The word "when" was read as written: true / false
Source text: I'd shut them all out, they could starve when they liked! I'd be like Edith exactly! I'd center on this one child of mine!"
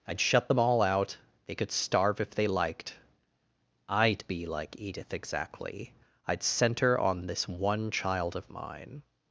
false